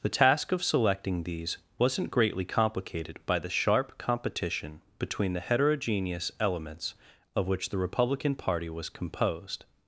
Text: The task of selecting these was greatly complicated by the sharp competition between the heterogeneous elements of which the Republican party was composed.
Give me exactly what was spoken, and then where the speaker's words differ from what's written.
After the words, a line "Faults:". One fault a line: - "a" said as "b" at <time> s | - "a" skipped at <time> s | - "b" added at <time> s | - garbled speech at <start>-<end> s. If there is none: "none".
The task of selecting these wasn't greatly complicated by the sharp competition between the heterogeneous elements of which the Republican party was composed.
Faults:
- "was" said as "wasn't" at 1.8 s